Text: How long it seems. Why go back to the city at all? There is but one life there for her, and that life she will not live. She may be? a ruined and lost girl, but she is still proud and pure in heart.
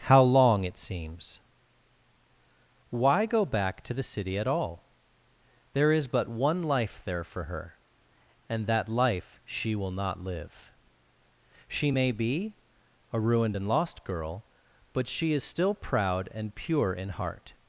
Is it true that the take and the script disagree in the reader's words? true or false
false